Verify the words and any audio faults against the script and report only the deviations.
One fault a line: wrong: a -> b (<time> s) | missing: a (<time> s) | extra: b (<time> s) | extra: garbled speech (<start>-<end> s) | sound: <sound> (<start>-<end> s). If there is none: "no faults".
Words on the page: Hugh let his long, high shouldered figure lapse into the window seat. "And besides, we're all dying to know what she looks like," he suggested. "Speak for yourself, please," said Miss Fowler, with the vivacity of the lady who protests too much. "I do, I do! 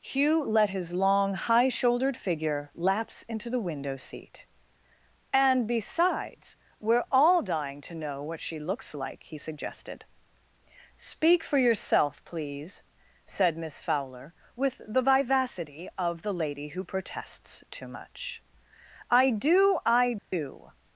sound: dropout (20.2-20.3 s)